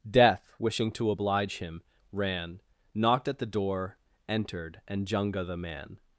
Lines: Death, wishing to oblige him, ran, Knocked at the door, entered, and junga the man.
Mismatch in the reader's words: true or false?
false